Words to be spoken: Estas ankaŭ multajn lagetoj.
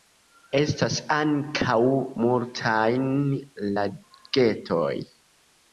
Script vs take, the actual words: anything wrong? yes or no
no